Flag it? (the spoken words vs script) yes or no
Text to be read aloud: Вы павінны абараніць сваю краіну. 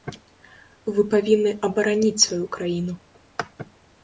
no